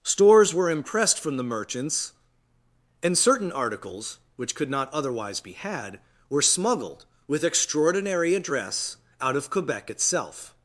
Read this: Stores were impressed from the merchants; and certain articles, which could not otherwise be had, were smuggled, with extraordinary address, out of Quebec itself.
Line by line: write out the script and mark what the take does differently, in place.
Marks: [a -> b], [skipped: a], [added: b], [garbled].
Stores were impressed from the merchants; and certain articles, which could not otherwise be had, were smuggled, with extraordinary address, out of Quebec itself.